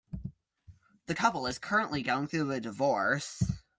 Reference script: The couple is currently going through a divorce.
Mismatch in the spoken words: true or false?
false